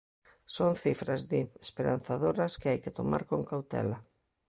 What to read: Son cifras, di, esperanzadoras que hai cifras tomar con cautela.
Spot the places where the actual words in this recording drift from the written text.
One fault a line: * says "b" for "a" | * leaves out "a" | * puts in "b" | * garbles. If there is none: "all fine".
* says "que" for "cifras"